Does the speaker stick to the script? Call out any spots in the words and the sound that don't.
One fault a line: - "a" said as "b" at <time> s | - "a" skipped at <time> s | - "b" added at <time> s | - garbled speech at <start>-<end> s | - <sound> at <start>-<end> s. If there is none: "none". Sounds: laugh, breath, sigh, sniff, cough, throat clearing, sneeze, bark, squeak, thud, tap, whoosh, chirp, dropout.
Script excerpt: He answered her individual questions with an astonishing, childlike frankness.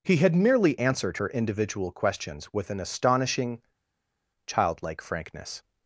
- "had merely" added at 0.2 s